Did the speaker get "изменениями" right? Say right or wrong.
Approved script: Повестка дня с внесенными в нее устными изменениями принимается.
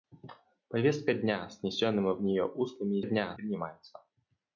wrong